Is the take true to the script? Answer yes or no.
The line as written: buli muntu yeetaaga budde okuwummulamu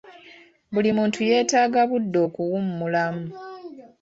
yes